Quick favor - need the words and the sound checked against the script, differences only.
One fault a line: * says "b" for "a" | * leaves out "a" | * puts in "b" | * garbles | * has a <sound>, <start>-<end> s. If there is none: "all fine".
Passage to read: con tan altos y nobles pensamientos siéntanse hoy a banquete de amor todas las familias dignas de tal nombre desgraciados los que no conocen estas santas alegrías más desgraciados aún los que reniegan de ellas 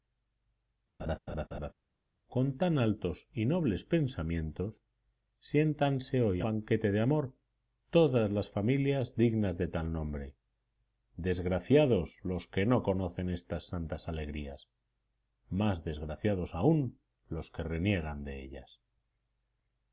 * has a laugh, 1.0-1.7 s